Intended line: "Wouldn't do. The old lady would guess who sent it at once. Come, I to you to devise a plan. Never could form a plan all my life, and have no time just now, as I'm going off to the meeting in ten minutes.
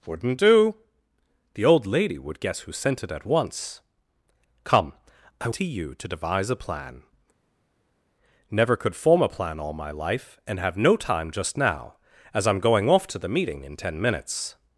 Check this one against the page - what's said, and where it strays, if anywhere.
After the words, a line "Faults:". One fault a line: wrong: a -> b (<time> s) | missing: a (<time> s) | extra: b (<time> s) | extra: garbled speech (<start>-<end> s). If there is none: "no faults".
"Wouldn't do. The old lady would guess who sent it at once. Come, I to you to devise a plan. Never could form a plan all my life, and have no time just now, as I'm going off to the meeting in ten minutes.
Faults:
no faults